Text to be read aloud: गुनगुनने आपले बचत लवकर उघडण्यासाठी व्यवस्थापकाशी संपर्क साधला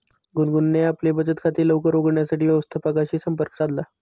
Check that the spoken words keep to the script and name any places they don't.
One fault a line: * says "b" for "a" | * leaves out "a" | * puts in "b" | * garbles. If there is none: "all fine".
* puts in "खाते"